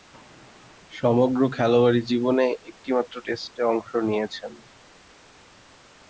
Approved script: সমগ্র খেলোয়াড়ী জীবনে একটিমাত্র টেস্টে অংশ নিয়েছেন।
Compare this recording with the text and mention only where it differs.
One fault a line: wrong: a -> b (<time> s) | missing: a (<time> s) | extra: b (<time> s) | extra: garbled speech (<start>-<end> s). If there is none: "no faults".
no faults